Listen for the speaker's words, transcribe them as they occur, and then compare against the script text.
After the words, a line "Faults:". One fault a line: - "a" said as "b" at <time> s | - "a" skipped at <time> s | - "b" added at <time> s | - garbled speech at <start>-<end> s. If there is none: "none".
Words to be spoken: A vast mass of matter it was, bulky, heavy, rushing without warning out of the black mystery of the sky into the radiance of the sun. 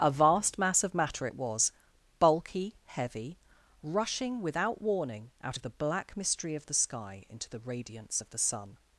A vast mass of matter it was, bulky, heavy, rushing without warning out of the black mystery of the sky into the radiance of the sun.
Faults:
none